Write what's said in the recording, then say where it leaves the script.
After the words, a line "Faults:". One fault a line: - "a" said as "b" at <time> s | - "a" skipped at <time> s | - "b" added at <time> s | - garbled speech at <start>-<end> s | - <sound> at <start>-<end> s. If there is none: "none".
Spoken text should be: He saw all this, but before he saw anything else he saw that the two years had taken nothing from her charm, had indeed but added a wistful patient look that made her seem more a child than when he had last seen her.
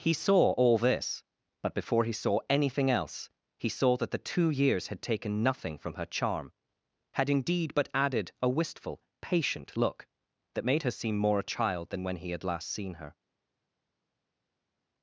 He saw all this, but before he saw anything else he saw that the two years had taken nothing from her charm, had indeed but added a wistful patient look that made her seem more a child than when he had last seen her.
Faults:
none